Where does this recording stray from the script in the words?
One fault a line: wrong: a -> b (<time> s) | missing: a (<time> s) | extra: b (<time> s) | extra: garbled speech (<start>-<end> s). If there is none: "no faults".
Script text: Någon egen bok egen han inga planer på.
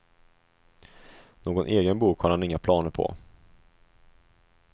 wrong: egen -> har (2.2 s)